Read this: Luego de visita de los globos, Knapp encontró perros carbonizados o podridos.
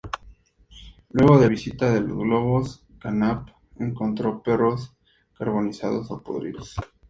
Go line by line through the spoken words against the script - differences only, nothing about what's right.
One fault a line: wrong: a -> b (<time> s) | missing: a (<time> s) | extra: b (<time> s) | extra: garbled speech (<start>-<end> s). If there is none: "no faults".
no faults